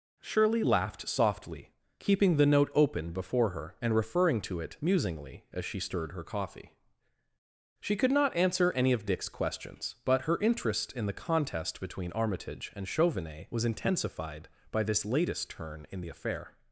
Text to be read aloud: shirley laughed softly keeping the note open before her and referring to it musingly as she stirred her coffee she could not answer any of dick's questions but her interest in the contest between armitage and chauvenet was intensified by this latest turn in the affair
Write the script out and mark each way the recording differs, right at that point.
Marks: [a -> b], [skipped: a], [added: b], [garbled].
shirley laughed softly keeping the note open before her and referring to it musingly as she stirred her coffee she could not answer any of dick's questions but her interest in the contest between armitage and chauvenet was intensified by this latest turn in the affair